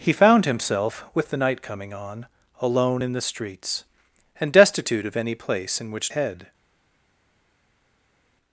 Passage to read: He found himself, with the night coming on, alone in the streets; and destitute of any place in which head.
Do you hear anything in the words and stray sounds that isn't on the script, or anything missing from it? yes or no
no